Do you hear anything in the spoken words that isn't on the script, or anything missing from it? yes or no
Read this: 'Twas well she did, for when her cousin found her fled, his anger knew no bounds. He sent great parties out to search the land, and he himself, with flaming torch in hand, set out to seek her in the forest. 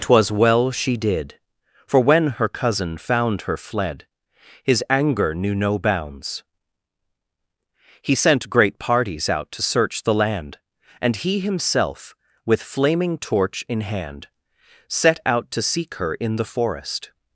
no